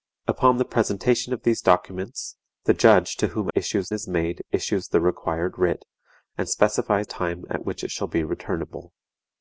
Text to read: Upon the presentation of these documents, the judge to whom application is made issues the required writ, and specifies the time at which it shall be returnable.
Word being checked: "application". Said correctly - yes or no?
no